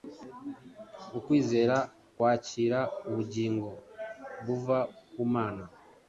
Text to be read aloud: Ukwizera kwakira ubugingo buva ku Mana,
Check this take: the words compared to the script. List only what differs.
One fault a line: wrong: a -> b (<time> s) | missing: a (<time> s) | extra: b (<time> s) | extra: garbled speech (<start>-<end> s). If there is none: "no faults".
no faults